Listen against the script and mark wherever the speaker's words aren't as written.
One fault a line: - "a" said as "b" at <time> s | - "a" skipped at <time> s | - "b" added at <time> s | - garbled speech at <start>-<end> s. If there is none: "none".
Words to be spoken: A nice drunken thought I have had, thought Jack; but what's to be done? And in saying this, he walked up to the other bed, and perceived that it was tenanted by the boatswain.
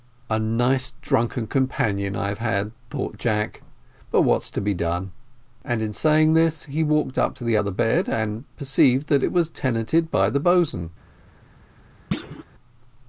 - "thought" said as "companion" at 1.4 s